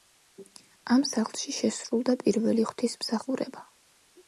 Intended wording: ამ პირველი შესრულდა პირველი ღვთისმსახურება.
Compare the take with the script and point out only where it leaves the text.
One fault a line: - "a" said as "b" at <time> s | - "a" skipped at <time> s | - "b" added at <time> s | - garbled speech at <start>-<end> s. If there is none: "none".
- "პირველი" said as "სახლში" at 1.1 s